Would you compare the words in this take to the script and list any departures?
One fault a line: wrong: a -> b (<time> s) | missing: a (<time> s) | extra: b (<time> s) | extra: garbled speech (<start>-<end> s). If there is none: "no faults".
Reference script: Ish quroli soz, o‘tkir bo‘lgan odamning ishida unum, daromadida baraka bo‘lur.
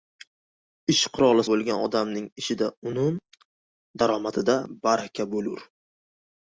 missing: soz o‘tkir (1.4 s)